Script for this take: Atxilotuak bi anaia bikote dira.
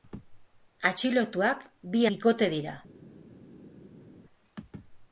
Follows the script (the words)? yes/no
no